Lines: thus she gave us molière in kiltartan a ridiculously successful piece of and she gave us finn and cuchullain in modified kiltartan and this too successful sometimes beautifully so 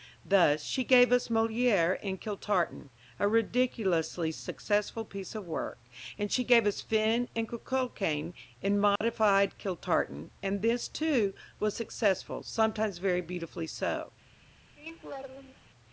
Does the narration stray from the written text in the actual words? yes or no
yes